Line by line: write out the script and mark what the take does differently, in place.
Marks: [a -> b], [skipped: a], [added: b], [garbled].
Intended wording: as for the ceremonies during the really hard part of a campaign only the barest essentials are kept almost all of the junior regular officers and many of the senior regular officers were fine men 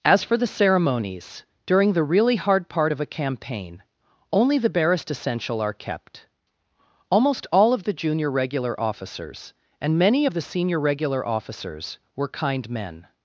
as for the ceremonies during the really hard part of a campaign only the barest [essentials -> essential] are kept almost all of the junior regular officers and many of the senior regular officers were [fine -> kind] men